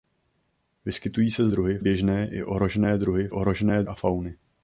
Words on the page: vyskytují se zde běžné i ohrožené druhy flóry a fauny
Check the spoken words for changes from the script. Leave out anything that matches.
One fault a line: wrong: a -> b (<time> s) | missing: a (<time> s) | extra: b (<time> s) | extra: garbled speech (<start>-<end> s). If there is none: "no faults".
wrong: zde -> druhy (1.5 s)
wrong: flóry -> ohrožené (3.3 s)